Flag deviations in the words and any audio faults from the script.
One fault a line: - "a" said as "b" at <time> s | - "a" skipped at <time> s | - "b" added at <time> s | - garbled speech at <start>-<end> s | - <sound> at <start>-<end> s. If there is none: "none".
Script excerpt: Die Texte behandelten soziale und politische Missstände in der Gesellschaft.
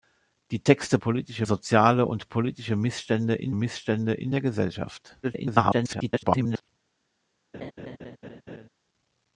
- "behandelten" said as "politische" at 1.0 s
- "Missstände in" added at 3.5 s
- garbled speech at 5.2-6.7 s
- laugh at 7.5-8.7 s